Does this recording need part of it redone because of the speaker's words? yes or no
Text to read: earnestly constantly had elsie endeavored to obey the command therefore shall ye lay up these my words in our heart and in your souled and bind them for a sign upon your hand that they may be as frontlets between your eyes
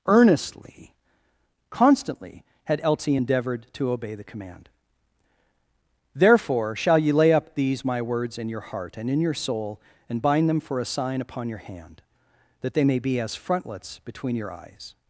yes